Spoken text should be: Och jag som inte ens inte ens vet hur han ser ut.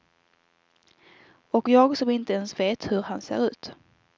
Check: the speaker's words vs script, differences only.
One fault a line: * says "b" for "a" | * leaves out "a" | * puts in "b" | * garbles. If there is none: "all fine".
* leaves out "inte ens"